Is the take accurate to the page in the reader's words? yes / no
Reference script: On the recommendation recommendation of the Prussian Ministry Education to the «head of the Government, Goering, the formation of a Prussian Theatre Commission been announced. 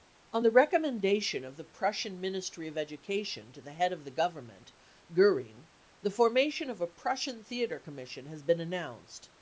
no